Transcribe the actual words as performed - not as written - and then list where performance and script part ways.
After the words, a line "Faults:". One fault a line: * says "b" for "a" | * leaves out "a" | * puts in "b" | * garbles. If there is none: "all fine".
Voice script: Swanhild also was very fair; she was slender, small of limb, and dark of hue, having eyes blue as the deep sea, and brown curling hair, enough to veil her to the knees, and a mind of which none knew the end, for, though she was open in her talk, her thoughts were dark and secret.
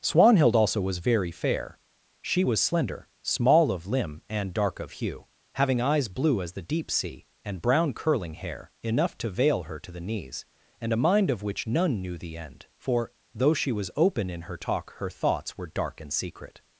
Swanhild also was very fair; she was slender, small of limb, and dark of hue, having eyes blue as the deep sea, and brown curling hair, enough to veil her to the knees, and a mind of which none knew the end, for, though she was open in her talk, her thoughts were dark and secret.
Faults:
all fine